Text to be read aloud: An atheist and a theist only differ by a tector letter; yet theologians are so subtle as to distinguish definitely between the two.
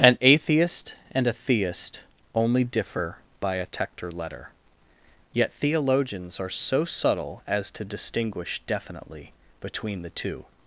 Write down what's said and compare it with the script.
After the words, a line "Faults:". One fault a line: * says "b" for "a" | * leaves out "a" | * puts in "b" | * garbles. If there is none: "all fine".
An atheist and a theist only differ by a tector letter; yet theologians are so subtle as to distinguish definitely between the two.
Faults:
all fine